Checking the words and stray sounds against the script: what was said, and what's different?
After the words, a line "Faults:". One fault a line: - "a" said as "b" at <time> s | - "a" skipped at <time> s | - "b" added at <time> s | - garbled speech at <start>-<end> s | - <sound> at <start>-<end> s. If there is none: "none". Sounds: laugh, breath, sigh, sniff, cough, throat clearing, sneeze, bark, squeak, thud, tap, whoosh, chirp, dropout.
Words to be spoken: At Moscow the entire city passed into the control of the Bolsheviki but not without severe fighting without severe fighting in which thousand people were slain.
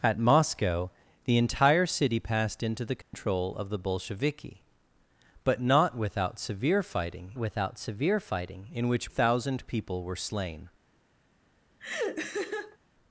At Moscow the entire city passed into the control of the Bolsheviki but not without severe fighting without severe fighting in which thousand people were slain.
Faults:
- dropout at 3.0-3.1 s
- laugh at 11.8-12.8 s